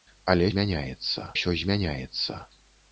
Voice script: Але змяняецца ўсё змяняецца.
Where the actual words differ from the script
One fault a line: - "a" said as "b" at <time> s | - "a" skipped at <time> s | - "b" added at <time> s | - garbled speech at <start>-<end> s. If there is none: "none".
none